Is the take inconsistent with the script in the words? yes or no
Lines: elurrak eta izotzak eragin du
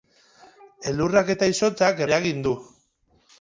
no